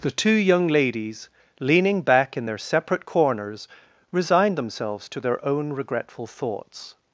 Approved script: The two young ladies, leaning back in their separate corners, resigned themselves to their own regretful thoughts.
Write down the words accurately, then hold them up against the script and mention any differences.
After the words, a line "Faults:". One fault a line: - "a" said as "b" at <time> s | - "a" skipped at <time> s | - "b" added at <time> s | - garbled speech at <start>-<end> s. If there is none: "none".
The two young ladies, leaning back in their separate corners, resigned themselves to their own regretful thoughts.
Faults:
none